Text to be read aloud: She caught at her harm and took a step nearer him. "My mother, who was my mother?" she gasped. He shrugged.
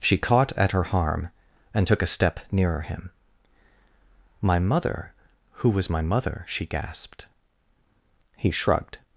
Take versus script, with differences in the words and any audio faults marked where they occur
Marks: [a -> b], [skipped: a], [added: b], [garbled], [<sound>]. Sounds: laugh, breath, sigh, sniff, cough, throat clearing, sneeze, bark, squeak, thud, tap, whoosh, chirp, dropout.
She caught at her harm and took a step nearer him. "My mother, who was my mother?" she gasped. He shrugged.